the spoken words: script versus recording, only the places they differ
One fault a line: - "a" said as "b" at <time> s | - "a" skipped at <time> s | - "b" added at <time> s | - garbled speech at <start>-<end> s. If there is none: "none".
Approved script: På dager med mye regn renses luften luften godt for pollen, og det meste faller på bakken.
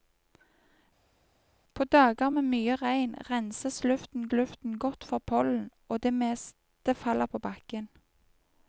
none